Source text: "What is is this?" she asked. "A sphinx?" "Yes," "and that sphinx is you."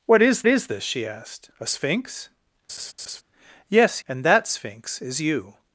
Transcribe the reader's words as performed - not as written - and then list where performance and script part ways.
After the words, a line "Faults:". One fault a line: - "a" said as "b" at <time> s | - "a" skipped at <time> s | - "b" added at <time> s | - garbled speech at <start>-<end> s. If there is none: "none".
"What is is this?" she asked. "A sphinx?" "Yes," "and that sphinx is you."
Faults:
none